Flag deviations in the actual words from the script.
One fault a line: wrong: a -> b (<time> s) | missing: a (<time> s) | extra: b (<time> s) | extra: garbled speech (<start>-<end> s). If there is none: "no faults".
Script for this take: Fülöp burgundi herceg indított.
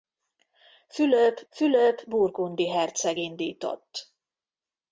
extra: fülöp (1.5 s)